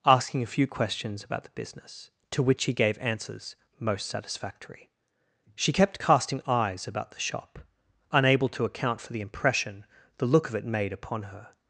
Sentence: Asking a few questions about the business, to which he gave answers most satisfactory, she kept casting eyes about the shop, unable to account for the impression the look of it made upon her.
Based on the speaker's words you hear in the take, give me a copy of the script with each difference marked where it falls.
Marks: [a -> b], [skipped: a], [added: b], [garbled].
Asking a few questions about the business, to which he gave answers most satisfactory, she kept casting eyes about the shop, unable to account for the impression the look of it made upon her.